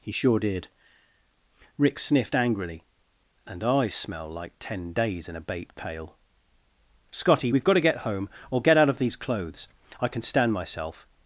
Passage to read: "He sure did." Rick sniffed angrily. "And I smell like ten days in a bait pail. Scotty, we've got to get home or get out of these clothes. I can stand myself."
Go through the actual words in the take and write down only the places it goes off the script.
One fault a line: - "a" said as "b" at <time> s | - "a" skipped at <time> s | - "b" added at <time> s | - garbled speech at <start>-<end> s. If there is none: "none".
none